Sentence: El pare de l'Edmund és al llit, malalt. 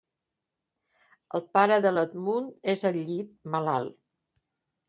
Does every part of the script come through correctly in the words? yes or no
yes